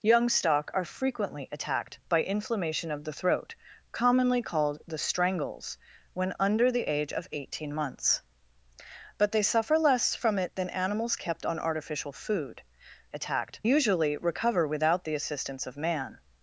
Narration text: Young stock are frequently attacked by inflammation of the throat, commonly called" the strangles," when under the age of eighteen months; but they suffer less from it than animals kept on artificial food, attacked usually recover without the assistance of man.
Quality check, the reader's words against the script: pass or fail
pass